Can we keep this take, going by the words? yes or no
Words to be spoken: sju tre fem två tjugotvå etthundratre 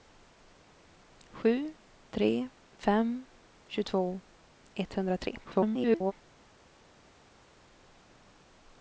no